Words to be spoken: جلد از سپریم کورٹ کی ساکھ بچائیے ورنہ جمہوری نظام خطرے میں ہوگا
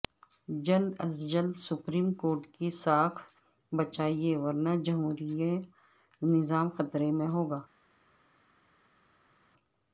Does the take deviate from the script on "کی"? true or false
false